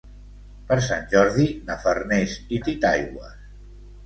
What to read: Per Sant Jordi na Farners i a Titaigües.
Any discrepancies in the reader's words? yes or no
no